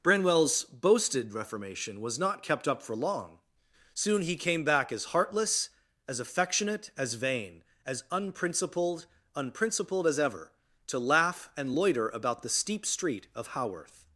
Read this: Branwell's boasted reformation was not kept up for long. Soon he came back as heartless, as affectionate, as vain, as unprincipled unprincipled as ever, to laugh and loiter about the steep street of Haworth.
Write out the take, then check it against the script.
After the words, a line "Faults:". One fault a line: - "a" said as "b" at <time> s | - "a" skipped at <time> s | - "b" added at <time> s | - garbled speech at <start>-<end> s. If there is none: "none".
Branwell's boasted reformation was not kept up for long. Soon he came back as heartless, as affectionate, as vain, as unprincipled unprincipled as ever, to laugh and loiter about the steep street of Haworth.
Faults:
none